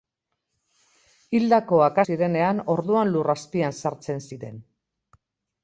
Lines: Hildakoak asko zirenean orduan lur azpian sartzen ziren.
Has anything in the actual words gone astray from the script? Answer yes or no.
yes